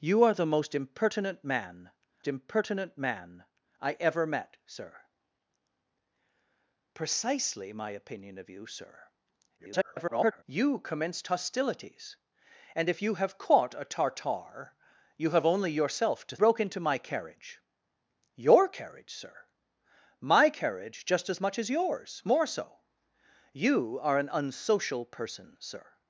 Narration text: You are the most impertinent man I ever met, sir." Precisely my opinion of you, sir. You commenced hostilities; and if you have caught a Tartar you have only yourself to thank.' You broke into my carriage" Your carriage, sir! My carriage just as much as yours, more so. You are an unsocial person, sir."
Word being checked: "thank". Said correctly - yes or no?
no